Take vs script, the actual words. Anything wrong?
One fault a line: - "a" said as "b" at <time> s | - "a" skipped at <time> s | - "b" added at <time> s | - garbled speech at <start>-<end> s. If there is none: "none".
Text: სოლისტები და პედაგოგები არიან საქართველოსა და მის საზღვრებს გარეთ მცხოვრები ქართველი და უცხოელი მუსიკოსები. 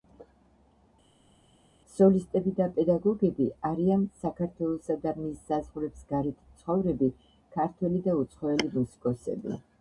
none